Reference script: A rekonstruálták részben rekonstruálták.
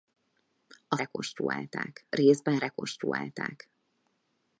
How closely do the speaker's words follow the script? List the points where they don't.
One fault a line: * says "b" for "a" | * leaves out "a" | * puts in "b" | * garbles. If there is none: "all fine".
all fine